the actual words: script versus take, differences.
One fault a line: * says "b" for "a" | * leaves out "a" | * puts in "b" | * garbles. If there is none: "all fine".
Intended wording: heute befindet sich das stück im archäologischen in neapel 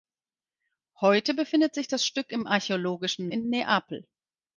all fine